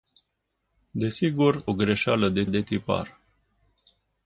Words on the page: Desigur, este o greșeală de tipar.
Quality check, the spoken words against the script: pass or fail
fail